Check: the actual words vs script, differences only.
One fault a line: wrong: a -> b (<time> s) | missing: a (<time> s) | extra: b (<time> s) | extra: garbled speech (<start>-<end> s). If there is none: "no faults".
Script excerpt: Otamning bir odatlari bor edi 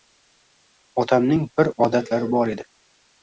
no faults